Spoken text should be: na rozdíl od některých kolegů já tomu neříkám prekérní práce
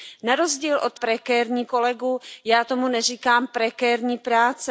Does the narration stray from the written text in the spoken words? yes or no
yes